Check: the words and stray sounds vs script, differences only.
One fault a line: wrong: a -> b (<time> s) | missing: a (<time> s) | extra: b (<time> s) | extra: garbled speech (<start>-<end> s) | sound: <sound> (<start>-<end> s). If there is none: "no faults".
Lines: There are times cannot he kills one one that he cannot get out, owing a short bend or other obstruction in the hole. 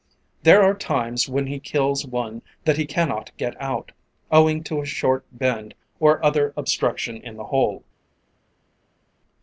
wrong: cannot -> when (1.3 s)
missing: one (2.4 s)
extra: to (4.6 s)